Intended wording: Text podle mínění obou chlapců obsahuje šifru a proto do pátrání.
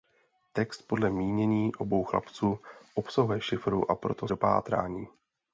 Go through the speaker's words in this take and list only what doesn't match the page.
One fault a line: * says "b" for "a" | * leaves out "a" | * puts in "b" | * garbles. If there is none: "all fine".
all fine